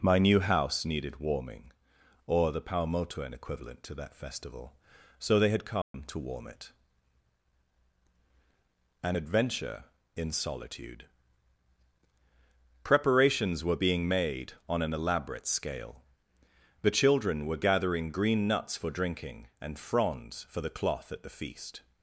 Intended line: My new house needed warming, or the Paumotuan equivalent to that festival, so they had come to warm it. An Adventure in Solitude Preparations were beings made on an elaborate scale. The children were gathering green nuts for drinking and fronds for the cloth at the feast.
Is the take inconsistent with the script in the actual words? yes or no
yes